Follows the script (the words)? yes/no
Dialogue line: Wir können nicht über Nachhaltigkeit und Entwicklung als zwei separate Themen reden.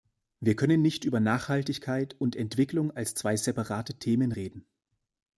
yes